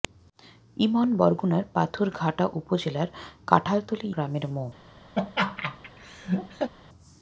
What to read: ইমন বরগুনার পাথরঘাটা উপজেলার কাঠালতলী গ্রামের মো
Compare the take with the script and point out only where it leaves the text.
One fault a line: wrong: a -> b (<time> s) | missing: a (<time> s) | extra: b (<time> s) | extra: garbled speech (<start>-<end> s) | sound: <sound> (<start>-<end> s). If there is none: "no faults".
sound: laugh (5.2-6.7 s)